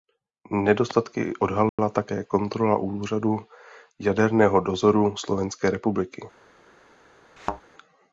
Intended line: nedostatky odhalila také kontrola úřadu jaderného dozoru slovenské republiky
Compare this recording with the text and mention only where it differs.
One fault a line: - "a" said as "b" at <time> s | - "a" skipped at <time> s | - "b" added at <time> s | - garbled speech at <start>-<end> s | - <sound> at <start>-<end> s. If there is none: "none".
- dropout at 1.7-1.8 s
- thud at 7.4-7.6 s